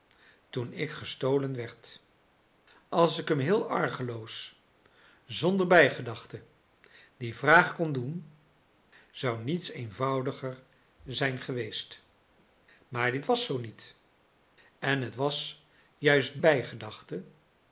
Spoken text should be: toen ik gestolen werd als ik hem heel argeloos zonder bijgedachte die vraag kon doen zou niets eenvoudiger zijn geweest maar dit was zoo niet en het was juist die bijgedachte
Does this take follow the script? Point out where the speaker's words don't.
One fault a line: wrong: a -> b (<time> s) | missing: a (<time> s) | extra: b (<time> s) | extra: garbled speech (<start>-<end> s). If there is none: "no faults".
missing: die (16.4 s)